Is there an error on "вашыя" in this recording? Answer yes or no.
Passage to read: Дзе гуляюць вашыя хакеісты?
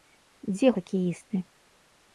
yes